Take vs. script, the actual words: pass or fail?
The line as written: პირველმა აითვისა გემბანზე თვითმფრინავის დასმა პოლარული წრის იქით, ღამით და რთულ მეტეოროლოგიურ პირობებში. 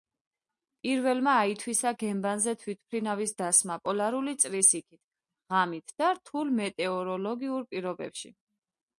pass